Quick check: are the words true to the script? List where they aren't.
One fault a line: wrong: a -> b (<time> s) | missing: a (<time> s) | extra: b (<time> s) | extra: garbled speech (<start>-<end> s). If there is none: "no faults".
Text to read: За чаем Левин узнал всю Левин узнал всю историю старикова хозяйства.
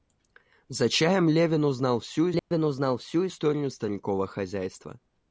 no faults